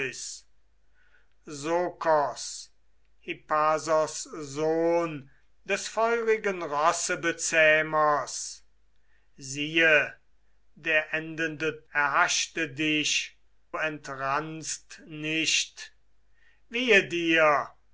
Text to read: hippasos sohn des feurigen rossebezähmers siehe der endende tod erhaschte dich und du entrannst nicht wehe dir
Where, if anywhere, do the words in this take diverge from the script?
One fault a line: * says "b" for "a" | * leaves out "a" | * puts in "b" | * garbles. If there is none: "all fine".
* leaves out "tod"
* leaves out "und du"